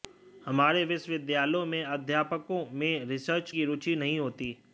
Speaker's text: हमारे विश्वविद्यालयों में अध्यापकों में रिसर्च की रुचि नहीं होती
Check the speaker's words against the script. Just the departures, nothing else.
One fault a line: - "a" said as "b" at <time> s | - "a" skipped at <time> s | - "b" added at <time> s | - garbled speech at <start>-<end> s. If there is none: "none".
none